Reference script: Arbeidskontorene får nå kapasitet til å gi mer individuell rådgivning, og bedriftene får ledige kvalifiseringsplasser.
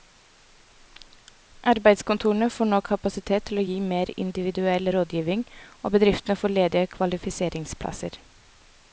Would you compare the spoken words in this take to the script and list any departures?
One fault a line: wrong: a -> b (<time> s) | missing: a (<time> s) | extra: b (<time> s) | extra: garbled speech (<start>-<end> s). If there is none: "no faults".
no faults